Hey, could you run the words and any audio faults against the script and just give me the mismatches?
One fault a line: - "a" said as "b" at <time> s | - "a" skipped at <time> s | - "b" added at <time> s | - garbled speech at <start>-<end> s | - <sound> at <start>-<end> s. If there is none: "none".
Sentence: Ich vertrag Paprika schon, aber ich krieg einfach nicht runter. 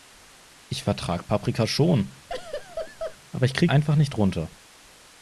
- laugh at 2.3-3.2 s